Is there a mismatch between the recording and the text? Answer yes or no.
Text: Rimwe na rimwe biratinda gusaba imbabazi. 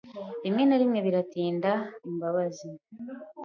yes